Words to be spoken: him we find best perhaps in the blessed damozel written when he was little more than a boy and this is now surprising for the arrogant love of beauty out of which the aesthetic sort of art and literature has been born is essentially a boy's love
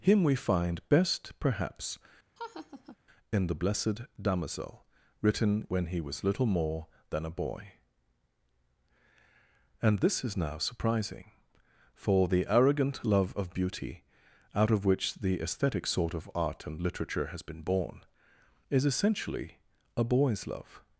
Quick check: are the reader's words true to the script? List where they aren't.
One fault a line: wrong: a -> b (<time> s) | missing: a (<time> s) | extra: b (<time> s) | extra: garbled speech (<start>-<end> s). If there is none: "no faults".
no faults